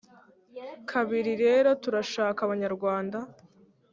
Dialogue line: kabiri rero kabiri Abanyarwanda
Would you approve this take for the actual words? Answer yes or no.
no